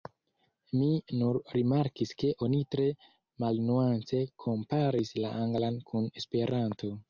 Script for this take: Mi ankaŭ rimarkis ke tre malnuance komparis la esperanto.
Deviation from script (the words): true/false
true